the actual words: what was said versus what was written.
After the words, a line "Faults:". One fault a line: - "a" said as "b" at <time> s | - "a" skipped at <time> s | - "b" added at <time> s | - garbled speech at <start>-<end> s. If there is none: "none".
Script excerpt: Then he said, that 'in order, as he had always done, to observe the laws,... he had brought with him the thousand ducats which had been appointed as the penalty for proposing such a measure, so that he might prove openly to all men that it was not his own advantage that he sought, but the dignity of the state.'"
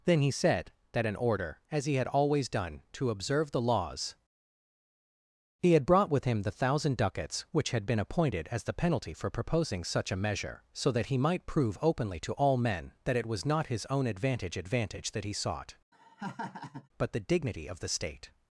Then he said, that 'in order, as he had always done, to observe the laws,... he had brought with him the thousand ducats which had been appointed as the penalty for proposing such a measure, so that he might prove openly to all men that it was not his own advantage advantage that he sought, but the dignity of the state.'"
Faults:
- "advantage" added at 14.6 s